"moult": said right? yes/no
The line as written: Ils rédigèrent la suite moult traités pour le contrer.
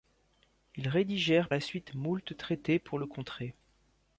yes